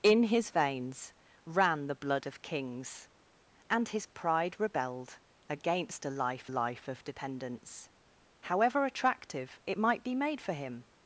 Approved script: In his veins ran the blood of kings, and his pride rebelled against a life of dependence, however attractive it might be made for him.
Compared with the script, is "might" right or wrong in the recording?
right